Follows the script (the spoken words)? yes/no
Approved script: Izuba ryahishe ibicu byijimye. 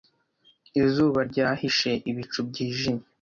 yes